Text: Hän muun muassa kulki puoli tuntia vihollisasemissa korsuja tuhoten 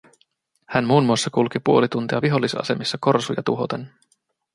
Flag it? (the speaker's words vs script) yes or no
no